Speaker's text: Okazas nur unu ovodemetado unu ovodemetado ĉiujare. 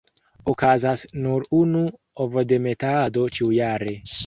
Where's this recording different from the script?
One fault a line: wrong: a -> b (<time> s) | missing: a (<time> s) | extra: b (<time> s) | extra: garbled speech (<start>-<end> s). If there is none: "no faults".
missing: unu ovodemetado (3.3 s)